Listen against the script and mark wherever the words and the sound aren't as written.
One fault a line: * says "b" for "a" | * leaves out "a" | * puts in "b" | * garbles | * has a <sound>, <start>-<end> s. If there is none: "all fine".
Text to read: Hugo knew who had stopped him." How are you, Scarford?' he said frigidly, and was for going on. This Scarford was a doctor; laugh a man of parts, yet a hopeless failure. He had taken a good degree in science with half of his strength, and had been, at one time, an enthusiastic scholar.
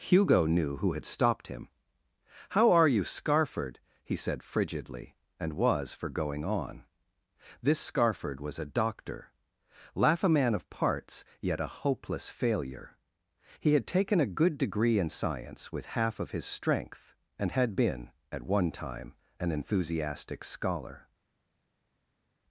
all fine